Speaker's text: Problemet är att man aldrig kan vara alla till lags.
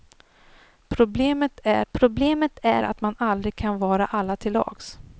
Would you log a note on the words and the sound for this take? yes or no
yes